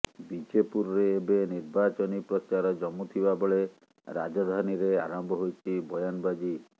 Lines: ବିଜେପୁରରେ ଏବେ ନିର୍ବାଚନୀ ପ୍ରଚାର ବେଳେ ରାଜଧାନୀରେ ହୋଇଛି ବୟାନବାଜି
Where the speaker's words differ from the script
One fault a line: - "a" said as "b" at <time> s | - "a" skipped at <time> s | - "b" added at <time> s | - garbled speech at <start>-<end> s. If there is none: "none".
- "ଜମୁଥିବା" added at 2.8 s
- "ଆରମ୍ଭ" added at 5.0 s